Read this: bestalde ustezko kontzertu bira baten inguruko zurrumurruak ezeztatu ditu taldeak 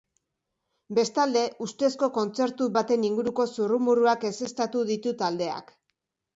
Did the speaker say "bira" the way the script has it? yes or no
no